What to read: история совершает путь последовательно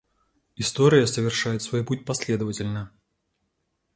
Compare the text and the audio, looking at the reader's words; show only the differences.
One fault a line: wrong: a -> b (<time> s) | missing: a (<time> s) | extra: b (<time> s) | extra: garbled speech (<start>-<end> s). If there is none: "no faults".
extra: свой (1.6 s)